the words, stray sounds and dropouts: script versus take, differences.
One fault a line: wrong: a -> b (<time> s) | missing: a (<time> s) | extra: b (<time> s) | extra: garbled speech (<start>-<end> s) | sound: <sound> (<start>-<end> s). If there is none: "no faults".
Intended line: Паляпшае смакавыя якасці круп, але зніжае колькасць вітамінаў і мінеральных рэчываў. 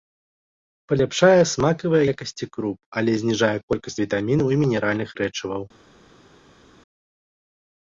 no faults